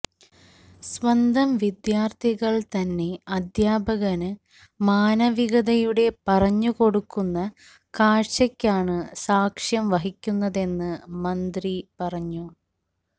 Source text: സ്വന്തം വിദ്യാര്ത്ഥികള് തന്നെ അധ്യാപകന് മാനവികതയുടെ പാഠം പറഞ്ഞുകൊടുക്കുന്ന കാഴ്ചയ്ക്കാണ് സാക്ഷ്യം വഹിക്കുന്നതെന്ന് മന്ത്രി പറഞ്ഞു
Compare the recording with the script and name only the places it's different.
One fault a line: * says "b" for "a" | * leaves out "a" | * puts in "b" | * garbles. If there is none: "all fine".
* leaves out "പാഠം"